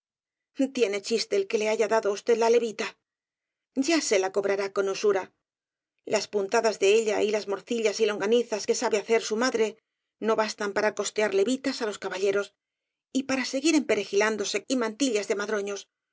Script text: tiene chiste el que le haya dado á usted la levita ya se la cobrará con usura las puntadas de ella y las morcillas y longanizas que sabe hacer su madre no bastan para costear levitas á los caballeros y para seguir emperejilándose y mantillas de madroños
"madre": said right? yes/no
yes